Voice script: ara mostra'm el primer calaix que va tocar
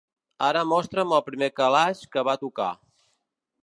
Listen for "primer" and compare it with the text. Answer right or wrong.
right